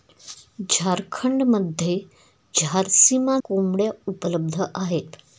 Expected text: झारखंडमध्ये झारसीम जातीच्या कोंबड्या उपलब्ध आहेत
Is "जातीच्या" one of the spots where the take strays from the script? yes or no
yes